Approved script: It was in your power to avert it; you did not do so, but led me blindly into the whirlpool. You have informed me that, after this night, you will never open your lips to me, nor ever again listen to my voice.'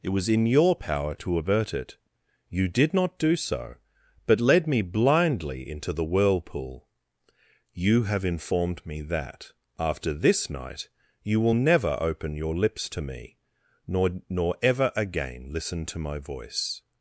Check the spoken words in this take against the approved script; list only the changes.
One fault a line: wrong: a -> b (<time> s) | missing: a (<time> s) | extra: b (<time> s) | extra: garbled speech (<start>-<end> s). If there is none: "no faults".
extra: nor (14.3 s)